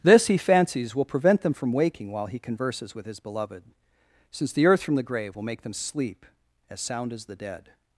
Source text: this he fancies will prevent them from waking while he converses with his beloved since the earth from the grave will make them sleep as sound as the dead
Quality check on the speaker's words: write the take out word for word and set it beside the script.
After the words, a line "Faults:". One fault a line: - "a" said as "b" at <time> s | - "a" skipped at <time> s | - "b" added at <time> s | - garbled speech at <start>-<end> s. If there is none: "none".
this he fancies will prevent them from waking while he converses with his beloved since the earth from the grave will make them sleep as sound as the dead
Faults:
none